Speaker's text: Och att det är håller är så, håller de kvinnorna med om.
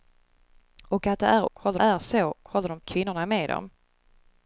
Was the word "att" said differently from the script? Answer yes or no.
no